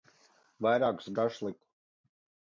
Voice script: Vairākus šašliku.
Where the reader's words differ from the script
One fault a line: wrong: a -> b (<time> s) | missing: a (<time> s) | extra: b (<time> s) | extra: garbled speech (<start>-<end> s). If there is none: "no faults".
no faults